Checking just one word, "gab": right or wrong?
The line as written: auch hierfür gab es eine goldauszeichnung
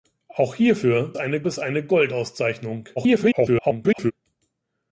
wrong